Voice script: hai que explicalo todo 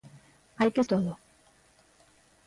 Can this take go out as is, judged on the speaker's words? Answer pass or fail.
fail